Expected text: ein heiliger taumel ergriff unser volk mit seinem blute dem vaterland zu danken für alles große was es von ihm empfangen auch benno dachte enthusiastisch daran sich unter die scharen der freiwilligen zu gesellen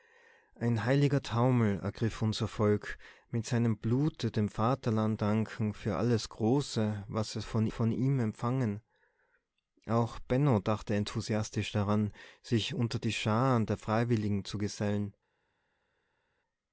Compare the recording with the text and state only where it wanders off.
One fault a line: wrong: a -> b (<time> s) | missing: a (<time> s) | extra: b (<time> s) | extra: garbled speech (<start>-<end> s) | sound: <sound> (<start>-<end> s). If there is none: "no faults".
missing: zu (5.2 s)
extra: von (7.7 s)